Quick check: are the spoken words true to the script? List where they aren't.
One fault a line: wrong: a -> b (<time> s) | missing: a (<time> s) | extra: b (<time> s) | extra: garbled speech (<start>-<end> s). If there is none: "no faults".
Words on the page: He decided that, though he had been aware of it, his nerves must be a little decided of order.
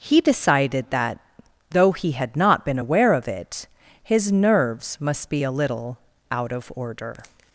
extra: not (2.4 s)
wrong: decided -> out (6.3 s)